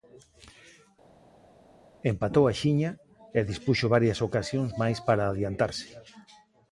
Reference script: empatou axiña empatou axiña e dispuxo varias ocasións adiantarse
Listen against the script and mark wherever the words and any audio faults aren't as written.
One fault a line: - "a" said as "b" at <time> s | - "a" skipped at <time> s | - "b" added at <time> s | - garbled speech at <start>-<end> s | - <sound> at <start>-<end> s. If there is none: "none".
- "empatou axiña" skipped at 2.9 s
- "máis para" added at 4.8 s